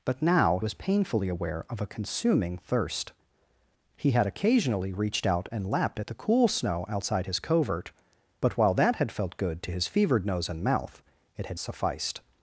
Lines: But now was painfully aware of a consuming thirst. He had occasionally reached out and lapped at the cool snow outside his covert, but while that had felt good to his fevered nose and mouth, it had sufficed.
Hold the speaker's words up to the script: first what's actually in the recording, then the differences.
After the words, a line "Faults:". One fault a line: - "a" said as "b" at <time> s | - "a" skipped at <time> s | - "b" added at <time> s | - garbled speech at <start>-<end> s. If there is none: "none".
But now was painfully aware of a consuming thirst. He had occasionally reached out and lapped at the cool snow outside his covert, but while that had felt good to his fevered nose and mouth, it had sufficed.
Faults:
none